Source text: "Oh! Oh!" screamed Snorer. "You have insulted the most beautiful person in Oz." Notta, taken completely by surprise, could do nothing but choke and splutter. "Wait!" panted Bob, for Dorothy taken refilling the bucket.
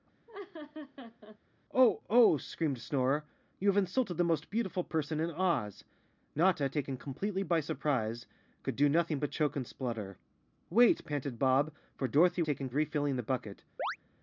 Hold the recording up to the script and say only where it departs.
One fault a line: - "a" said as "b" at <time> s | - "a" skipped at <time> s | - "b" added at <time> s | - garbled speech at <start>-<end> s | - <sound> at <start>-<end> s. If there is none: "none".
- laugh at 0.3-1.4 s
- chirp at 13.8-14.0 s